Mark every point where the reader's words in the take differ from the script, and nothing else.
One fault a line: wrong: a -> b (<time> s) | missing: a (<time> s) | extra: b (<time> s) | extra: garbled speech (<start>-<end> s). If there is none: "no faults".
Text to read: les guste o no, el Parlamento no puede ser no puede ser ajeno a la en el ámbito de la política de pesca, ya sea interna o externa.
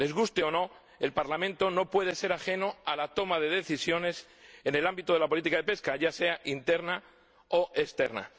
wrong: no puede ser ajeno a la -> ajeno a la toma de decisiones (2.3 s)